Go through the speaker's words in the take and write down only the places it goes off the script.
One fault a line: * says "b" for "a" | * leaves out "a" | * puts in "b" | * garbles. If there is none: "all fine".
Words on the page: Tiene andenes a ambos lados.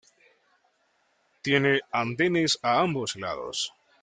all fine